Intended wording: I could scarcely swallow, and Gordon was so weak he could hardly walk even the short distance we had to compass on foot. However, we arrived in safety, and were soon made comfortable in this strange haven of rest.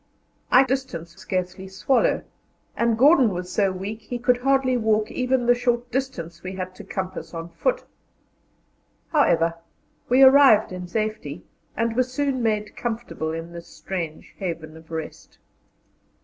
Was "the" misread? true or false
false